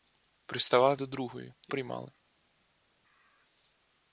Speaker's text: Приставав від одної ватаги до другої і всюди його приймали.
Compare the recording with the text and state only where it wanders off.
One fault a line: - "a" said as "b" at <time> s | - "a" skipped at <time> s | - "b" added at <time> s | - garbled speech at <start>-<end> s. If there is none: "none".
- "від одної ватаги" skipped at 1.0 s
- "всюди його" skipped at 1.7 s